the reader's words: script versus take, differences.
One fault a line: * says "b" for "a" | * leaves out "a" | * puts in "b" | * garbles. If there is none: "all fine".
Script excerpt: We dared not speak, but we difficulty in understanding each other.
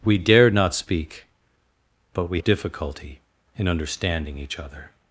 all fine